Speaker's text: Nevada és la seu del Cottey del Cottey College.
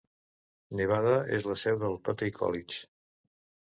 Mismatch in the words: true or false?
true